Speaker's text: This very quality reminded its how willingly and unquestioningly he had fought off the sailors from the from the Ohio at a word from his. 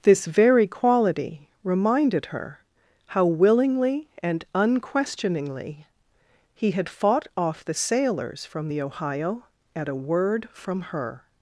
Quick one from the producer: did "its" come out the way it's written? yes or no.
no